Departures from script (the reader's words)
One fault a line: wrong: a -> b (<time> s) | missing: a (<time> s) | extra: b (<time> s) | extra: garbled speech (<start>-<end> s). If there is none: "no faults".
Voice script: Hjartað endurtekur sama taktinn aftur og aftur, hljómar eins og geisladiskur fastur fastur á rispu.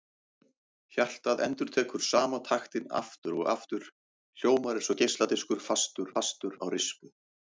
no faults